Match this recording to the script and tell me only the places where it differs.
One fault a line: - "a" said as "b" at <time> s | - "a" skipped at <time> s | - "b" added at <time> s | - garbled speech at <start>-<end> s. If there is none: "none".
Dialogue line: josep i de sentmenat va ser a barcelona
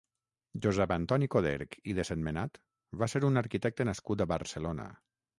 - "antoni coderch" added at 0.9 s
- "un arquitecte nascut" added at 3.3 s